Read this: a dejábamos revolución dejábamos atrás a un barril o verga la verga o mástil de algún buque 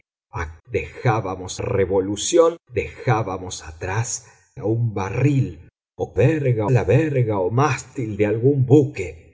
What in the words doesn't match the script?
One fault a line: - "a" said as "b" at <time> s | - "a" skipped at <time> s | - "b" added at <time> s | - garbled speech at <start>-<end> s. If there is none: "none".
none